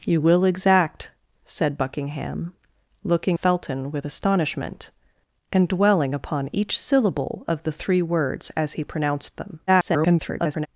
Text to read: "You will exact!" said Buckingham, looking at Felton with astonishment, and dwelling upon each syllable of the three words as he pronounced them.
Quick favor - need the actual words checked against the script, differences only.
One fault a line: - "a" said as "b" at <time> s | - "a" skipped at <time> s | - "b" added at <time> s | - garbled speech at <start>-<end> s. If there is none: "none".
- "at" skipped at 3.4 s
- garbled speech at 9.7-10.7 s